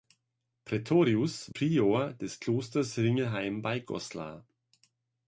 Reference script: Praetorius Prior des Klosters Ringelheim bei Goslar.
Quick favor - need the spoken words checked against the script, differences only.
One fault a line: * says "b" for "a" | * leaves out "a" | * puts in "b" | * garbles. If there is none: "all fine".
all fine